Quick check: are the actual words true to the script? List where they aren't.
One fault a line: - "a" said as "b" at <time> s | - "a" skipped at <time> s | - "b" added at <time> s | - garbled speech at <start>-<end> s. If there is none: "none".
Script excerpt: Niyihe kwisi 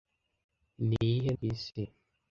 none